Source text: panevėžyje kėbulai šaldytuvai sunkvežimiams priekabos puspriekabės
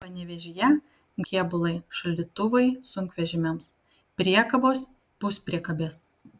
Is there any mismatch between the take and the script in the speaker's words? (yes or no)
no